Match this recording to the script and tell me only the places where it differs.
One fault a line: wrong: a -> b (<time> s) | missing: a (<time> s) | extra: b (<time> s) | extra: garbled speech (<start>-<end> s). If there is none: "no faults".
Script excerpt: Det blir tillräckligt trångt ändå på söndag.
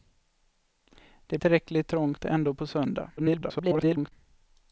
missing: blir (1.4 s)
extra: garbled speech (3.2-4.1 s)